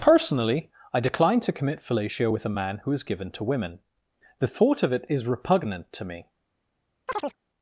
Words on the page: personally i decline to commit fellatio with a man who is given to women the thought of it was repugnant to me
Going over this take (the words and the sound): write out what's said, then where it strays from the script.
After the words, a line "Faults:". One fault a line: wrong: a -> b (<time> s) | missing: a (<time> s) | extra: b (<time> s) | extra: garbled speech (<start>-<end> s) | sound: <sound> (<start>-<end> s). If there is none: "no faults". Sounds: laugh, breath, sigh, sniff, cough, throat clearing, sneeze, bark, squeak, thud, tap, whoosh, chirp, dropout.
personally i decline to commit fellatio with a man who is given to women the thought of it is repugnant to me
Faults:
wrong: was -> is (5.1 s)
sound: chirp (7.1-7.4 s)